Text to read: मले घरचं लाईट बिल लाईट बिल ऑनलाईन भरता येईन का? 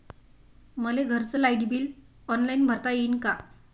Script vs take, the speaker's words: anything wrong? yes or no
yes